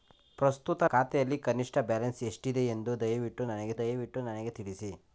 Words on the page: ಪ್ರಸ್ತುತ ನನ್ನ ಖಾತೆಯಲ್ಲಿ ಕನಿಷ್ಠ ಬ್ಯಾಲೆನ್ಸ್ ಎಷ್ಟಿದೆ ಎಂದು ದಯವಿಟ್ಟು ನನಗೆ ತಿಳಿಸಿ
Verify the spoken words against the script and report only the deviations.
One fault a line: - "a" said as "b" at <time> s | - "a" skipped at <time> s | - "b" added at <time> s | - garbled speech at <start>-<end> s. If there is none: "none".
- "ನನ್ನ" skipped at 0.8 s
- "ದಯವಿಟ್ಟು ನನಗೆ" added at 3.8 s